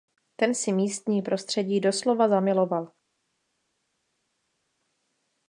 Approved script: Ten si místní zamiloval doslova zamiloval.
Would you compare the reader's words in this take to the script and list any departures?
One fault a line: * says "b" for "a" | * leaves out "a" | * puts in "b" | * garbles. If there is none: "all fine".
* says "prostředí" for "zamiloval"